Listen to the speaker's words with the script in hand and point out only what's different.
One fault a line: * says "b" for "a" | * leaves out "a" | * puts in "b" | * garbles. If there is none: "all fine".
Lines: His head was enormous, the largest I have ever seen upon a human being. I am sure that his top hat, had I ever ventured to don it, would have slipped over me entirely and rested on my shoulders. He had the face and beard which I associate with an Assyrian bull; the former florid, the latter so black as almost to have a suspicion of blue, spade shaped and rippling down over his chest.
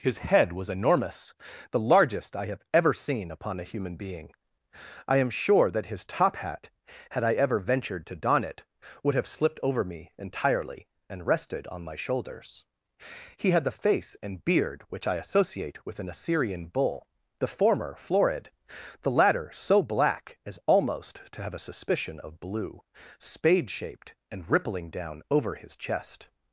all fine